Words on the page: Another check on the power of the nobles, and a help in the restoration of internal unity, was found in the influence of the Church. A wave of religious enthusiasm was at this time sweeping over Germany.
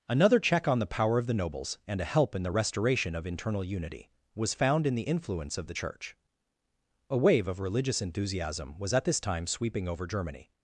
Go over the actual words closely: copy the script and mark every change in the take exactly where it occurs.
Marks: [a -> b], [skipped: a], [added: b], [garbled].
Another check on the power of the nobles, and a help in the restoration of internal unity, was found in the influence of the Church. A wave of religious enthusiasm was at this time sweeping over Germany.